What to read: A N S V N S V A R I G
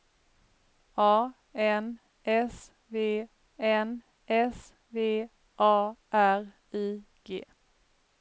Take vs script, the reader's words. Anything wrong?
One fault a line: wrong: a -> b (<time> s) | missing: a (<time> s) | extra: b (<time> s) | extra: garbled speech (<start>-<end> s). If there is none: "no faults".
no faults